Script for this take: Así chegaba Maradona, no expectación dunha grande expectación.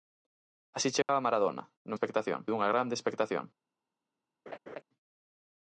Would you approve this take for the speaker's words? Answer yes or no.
yes